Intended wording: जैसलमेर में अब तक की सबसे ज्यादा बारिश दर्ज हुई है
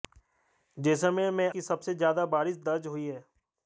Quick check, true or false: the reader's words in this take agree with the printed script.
false